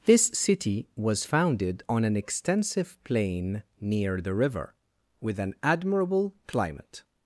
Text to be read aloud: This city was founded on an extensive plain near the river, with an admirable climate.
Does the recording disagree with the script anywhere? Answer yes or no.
no